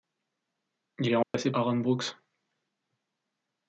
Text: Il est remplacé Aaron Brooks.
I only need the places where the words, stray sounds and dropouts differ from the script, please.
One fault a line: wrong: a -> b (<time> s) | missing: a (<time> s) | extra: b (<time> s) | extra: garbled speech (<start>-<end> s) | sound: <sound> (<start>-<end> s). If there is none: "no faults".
sound: dropout (1.2-1.3 s)